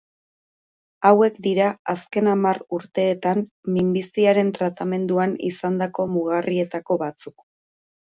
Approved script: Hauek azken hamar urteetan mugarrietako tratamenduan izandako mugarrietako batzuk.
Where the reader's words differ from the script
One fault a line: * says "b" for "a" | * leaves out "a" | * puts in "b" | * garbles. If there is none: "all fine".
* puts in "dira"
* says "minbiziaren" for "mugarrietako"